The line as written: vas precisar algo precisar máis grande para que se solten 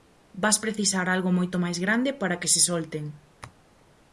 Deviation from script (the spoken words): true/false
true